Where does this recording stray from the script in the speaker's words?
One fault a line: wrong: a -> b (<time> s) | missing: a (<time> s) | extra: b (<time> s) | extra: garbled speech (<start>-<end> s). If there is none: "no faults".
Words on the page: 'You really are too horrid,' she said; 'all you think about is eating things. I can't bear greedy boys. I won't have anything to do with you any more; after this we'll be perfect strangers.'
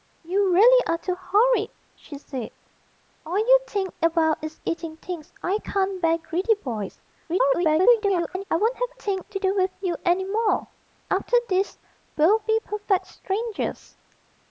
extra: garbled speech (7.3-8.4 s)
wrong: anything -> think (9.0 s)